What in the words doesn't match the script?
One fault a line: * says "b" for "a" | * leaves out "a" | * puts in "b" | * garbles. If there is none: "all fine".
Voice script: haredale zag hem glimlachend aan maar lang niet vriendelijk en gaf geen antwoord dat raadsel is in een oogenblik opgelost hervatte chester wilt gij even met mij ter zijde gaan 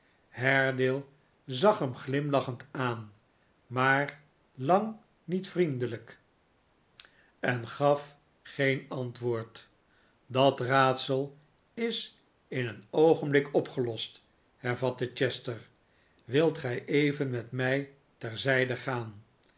all fine